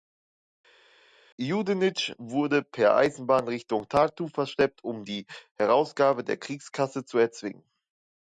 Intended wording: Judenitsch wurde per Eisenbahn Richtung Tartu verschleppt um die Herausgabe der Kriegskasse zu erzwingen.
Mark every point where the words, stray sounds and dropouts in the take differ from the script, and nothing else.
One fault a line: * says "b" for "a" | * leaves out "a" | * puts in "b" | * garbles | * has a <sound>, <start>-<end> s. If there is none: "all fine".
all fine